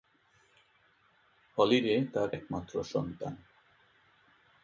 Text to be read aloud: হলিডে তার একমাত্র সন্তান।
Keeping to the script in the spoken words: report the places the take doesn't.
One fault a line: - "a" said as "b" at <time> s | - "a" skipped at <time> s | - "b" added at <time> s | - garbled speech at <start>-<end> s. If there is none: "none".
none